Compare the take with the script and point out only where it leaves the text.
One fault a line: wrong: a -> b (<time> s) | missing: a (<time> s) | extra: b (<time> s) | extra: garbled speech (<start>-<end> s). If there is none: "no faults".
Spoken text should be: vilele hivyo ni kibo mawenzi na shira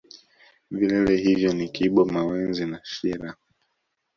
no faults